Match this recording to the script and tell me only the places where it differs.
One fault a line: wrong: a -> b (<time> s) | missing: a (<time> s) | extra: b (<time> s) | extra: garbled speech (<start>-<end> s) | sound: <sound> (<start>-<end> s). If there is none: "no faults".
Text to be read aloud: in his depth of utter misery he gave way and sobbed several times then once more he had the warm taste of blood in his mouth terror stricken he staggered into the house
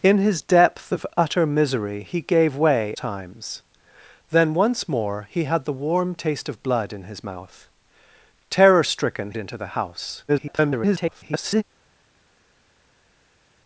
missing: and sobbed several (3.0 s)
missing: he staggered (9.3 s)
extra: garbled speech (10.3-11.6 s)